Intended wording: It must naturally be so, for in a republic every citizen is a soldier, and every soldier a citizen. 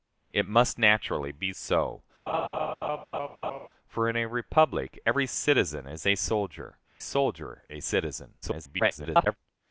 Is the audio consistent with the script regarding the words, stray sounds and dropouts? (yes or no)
no